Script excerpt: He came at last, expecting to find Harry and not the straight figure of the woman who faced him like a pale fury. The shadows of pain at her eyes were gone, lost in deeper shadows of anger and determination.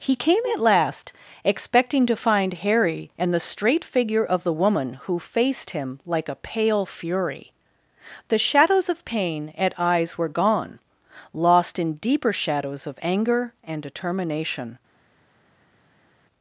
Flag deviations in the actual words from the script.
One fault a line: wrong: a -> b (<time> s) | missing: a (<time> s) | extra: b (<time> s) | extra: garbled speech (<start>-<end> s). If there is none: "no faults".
missing: not (3.3 s)
missing: her (9.8 s)